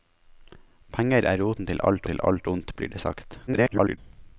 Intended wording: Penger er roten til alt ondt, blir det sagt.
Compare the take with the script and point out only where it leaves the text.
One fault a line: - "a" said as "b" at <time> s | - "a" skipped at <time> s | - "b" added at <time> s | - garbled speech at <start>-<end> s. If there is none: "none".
- "til alt" added at 2.1 s
- garbled speech at 3.5-4.0 s